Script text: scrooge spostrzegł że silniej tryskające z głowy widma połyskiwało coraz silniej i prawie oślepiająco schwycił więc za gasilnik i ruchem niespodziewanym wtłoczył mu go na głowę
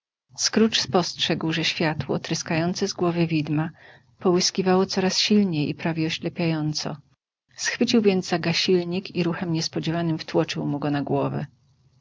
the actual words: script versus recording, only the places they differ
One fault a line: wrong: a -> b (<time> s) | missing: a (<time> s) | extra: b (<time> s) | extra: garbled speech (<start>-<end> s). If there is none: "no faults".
wrong: silniej -> światło (1.6 s)